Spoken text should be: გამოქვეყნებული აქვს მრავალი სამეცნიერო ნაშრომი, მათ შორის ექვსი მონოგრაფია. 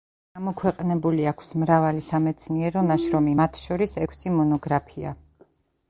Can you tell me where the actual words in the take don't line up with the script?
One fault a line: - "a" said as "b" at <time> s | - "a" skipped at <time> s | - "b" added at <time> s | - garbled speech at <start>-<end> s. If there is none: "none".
none